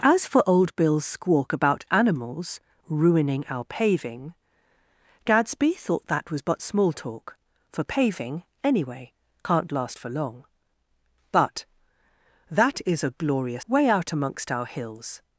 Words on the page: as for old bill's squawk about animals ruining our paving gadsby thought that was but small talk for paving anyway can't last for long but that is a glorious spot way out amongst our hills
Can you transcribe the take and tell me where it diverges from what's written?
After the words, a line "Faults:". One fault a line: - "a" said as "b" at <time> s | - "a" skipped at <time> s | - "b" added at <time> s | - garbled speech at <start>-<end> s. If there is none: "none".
as for old bill's squawk about animals ruining our paving gadsby thought that was but small talk for paving anyway can't last for long but that is a glorious way out amongst our hills
Faults:
- "spot" skipped at 13.7 s